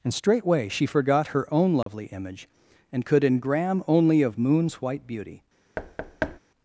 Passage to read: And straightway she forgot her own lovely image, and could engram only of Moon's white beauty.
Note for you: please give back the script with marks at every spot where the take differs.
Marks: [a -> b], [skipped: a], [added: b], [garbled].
And straightway she forgot her own lovely image, and could engram only of Moon's white beauty.